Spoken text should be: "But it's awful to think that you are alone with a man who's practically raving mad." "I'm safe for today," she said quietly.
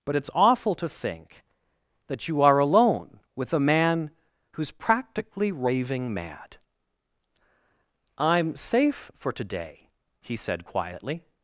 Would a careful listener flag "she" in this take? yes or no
yes